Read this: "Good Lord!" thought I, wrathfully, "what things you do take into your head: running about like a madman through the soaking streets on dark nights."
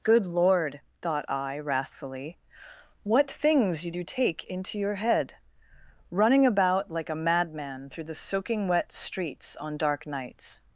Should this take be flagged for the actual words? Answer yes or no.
yes